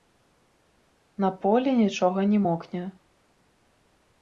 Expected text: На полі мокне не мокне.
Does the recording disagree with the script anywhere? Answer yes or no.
yes